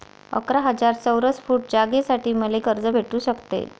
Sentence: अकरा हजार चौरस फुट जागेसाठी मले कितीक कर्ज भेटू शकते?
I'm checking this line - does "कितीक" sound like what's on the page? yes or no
no